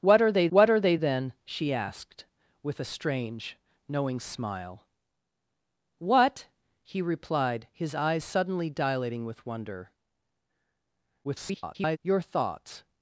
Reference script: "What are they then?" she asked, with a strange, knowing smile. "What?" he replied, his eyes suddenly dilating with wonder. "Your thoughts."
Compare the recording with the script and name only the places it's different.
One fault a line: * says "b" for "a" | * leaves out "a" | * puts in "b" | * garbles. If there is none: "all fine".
* puts in "what are they"
* garbles